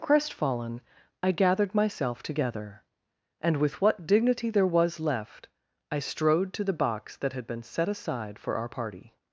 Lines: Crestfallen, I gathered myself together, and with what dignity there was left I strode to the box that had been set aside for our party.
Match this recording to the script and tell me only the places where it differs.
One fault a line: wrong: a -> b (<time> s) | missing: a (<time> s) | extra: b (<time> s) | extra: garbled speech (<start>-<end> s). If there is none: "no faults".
no faults